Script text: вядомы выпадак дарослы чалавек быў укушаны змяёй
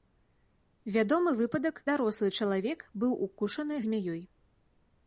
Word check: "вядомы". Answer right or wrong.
right